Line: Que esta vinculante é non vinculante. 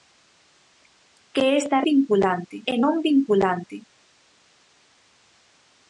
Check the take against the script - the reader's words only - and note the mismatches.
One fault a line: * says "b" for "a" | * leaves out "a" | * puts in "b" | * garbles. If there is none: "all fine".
all fine